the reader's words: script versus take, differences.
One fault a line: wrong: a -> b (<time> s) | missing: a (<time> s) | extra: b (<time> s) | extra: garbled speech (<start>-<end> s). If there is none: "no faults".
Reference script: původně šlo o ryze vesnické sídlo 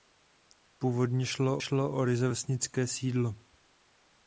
extra: šlo (1.6 s)